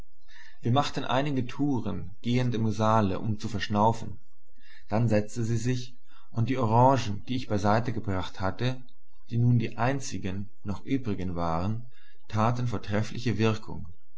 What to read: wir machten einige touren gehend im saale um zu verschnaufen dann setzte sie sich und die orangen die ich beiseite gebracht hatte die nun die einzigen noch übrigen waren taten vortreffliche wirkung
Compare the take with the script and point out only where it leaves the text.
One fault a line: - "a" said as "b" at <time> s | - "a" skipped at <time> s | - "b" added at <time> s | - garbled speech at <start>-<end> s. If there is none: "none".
none